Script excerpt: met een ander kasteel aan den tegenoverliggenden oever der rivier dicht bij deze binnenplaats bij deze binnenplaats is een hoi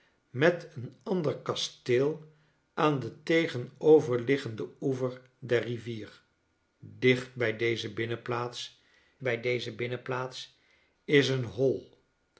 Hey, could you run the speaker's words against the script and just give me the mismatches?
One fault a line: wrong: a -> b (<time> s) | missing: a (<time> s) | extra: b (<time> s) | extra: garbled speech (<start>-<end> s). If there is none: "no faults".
no faults